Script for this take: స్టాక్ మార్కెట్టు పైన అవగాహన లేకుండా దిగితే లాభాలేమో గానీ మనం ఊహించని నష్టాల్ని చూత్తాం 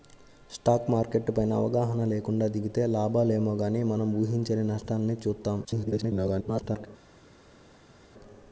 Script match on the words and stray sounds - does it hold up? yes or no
no